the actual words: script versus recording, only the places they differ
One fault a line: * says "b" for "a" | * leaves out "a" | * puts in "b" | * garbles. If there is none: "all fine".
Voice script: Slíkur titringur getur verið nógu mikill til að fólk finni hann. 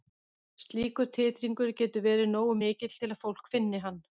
all fine